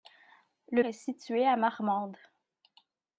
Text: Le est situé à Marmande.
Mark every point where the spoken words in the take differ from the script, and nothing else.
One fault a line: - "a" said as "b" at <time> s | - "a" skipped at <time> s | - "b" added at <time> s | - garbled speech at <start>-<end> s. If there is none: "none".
none